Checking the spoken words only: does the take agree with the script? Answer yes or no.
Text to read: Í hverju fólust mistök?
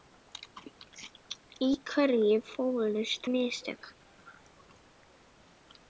yes